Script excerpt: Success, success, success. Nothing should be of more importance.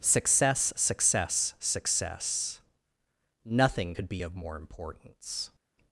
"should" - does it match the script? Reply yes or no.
no